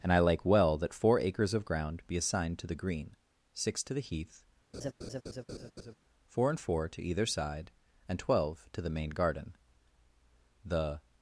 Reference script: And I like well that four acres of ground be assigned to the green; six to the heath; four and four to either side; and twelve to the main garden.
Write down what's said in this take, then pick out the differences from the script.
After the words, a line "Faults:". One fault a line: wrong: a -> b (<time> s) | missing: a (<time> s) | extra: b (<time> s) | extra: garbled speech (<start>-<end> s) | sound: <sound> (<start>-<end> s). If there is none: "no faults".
And I like well that four acres of ground be assigned to the green; six to the heath; four and four to either side; and twelve to the main garden. The
Faults:
sound: laugh (4.7-6.0 s)
extra: The (10.6 s)